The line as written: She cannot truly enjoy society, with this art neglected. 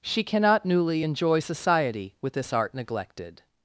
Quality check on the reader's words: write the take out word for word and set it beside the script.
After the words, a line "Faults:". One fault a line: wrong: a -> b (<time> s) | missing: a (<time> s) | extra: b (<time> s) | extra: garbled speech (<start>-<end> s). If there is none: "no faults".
She cannot newly enjoy society, with this art neglected.
Faults:
wrong: truly -> newly (0.7 s)